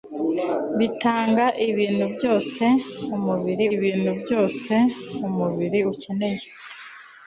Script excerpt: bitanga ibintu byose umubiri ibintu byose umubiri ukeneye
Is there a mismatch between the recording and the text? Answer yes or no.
no